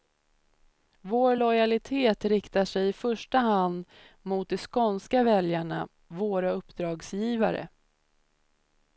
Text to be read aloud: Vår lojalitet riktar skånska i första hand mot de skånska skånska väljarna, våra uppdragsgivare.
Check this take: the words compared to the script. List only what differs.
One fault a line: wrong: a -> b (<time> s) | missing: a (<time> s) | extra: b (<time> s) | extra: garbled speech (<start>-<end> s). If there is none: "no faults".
wrong: skånska -> sig (2.6 s)
missing: skånska (5.2 s)